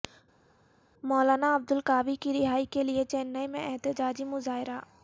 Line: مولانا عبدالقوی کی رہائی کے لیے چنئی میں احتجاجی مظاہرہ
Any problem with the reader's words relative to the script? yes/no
no